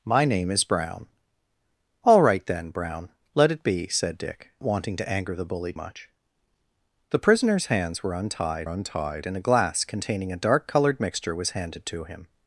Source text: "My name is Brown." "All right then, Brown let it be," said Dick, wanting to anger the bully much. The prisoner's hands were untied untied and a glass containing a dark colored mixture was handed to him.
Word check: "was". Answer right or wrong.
right